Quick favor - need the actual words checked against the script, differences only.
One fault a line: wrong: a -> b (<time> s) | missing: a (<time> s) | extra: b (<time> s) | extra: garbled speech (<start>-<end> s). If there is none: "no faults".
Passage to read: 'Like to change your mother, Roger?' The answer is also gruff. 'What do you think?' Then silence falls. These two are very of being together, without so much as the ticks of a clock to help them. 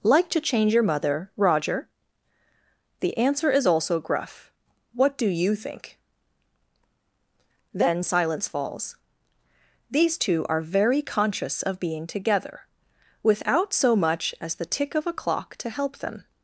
extra: conscious (11.0 s)
wrong: ticks -> tick (14.7 s)